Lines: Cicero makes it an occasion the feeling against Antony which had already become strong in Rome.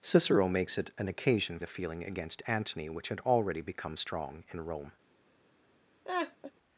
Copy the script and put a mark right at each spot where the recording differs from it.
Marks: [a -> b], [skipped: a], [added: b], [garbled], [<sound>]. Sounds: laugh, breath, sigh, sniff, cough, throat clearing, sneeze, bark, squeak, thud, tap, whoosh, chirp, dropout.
Cicero makes it an occasion the feeling against Antony which had already become strong in Rome. [laugh]